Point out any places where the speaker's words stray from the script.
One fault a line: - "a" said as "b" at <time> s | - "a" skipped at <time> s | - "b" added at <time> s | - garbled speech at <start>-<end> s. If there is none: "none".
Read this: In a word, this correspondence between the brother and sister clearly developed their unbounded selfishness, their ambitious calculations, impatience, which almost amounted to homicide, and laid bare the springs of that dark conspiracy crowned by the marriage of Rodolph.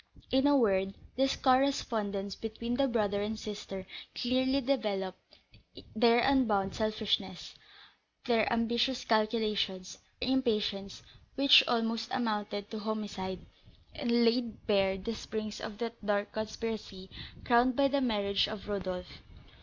none